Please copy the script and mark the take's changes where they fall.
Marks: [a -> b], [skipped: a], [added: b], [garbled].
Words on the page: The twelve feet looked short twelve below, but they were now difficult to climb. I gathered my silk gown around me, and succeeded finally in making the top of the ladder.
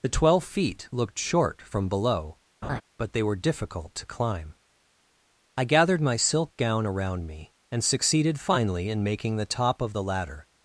The twelve feet looked short [twelve -> from] below, but they were [skipped: now] difficult to climb. I gathered my silk gown around me, and succeeded finally in making the top of the ladder.